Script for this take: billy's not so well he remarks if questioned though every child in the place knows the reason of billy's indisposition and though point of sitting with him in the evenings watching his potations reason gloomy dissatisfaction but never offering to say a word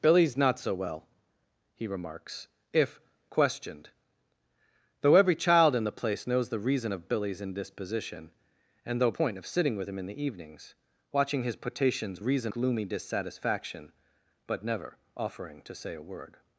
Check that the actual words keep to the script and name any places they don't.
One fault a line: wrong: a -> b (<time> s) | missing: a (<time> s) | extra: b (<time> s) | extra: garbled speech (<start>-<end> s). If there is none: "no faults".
no faults